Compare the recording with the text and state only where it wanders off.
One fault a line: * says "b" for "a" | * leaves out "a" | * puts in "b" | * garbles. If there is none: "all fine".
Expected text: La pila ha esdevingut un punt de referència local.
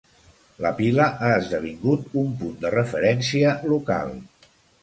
all fine